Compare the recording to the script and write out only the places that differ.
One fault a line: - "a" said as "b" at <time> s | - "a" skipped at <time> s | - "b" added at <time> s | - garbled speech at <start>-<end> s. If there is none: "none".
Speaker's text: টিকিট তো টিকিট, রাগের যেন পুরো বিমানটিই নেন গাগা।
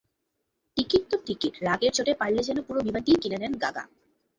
- "চোটে পারলে" added at 2.0 s
- "কিনে" added at 3.2 s